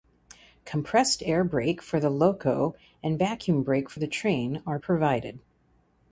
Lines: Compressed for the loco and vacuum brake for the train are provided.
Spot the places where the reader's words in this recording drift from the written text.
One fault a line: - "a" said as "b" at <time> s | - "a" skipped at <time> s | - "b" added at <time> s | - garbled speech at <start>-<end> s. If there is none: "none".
- "air brake" added at 1.2 s